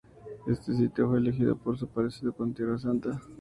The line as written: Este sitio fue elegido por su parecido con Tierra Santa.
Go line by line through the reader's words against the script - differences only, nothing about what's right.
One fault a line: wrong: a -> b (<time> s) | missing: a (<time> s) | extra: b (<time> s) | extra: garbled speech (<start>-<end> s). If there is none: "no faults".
no faults